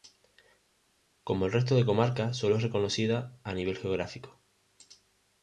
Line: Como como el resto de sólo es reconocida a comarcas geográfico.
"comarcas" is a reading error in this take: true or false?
true